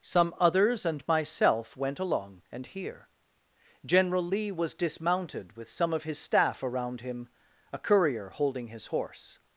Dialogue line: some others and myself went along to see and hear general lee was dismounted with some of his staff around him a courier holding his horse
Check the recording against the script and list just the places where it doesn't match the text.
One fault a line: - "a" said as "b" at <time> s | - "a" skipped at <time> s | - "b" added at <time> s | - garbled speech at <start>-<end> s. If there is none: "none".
- "to see" skipped at 2.4 s